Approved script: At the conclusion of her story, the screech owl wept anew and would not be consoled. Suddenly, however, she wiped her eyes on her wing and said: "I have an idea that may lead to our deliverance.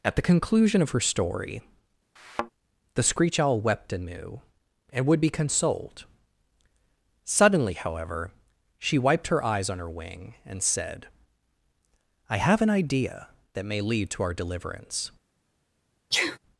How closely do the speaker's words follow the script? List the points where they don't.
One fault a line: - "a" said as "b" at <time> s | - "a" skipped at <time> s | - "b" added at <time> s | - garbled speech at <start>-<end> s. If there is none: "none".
- "not" skipped at 5.2 s